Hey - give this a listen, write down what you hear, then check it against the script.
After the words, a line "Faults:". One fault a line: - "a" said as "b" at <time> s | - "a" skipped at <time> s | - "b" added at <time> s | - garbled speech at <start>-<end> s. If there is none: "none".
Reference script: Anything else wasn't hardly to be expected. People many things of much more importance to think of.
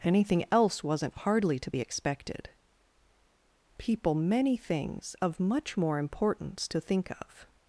Anything else wasn't hardly to be expected. People many things of much more importance to think of.
Faults:
none